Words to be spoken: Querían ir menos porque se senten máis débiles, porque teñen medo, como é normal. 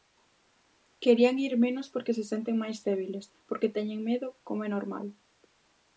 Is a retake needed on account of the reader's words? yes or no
no